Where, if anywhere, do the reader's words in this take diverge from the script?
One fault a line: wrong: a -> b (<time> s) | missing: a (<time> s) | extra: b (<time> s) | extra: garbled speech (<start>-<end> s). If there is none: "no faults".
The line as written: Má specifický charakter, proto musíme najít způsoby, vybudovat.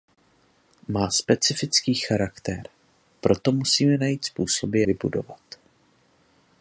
no faults